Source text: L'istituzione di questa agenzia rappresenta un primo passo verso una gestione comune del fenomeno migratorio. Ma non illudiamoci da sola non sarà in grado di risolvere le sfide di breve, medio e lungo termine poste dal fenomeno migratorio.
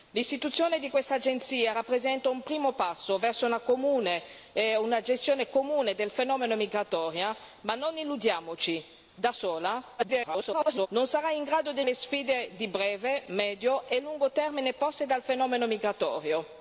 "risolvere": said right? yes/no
no